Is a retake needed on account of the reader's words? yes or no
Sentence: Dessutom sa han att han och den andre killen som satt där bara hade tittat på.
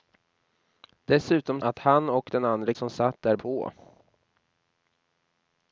yes